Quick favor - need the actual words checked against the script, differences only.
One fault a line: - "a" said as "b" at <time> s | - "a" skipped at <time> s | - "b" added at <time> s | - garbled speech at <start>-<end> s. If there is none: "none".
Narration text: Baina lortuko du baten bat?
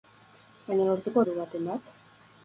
none